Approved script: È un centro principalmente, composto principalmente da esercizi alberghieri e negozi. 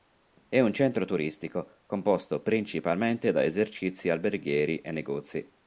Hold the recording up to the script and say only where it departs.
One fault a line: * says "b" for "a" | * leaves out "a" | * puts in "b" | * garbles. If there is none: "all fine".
* says "turistico" for "principalmente"